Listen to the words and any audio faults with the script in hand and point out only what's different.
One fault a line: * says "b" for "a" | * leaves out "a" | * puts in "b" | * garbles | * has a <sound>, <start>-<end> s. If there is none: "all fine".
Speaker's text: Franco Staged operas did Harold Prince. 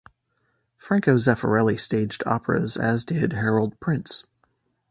* puts in "Zeffirelli"
* puts in "as"